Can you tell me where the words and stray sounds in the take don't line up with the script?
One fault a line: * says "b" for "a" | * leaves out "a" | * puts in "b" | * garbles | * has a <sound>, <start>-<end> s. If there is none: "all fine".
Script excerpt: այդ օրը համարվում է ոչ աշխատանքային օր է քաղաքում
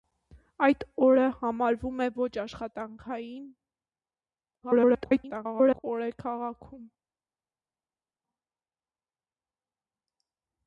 * garbles